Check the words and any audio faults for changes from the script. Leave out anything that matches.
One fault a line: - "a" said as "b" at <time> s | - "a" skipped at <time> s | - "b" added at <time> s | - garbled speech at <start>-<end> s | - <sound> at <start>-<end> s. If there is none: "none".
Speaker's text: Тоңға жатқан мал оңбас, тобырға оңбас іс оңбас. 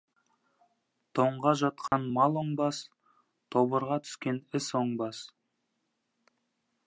- dropout at 1.9-1.9 s
- "оңбас" said as "түскен" at 4.1 s